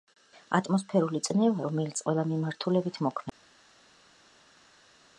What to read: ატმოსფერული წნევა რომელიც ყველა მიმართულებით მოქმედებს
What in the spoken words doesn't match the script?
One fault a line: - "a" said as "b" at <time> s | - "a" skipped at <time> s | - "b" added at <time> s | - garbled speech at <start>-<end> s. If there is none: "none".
none